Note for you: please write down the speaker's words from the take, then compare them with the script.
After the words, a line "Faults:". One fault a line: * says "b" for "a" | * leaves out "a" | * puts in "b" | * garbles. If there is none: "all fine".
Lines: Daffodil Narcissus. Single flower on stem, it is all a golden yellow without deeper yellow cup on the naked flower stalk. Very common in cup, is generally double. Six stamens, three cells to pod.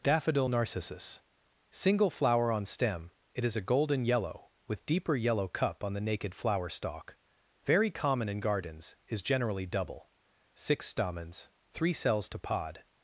Daffodil Narcissus. Single flower on stem, it is a golden yellow with deeper yellow cup on the naked flower stalk. Very common in gardens, is generally double. Six stamens, three cells to pod.
Faults:
* leaves out "all"
* says "with" for "without"
* says "gardens" for "cup"